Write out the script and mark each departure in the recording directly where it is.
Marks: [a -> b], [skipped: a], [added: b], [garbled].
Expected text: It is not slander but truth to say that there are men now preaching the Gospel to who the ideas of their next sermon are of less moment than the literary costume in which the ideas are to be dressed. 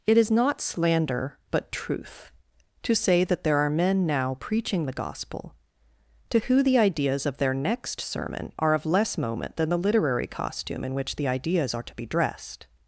It is not slander but truth to say that there are men now preaching the Gospel to who the ideas of their next sermon are of less moment than the literary costume in which the ideas are to be dressed.